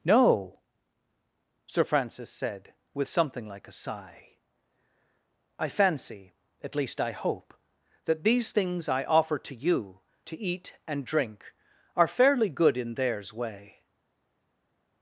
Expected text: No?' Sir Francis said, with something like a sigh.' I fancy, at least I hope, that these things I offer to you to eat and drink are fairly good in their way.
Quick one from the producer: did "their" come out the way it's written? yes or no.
no